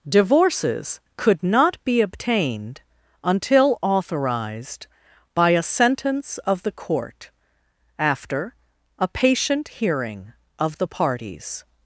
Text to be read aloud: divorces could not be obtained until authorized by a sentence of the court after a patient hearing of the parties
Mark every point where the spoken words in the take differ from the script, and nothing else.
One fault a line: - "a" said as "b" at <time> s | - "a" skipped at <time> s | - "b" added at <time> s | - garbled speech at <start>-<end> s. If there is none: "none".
none